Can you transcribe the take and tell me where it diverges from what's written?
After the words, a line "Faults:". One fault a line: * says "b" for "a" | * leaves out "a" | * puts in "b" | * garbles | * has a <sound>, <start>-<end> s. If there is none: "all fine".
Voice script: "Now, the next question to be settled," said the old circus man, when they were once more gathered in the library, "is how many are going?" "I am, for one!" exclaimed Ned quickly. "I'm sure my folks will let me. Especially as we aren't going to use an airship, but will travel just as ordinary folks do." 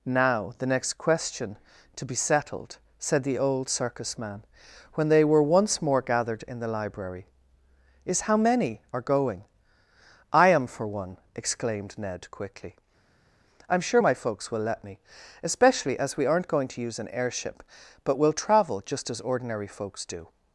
"Now, the next question to be settled," said the old circus man, when they were once more gathered in the library, "is how many are going?" "I am, for one!" exclaimed Ned quickly. "I'm sure my folks will let me. Especially as we aren't going to use an airship, but will travel just as ordinary folks do."
Faults:
all fine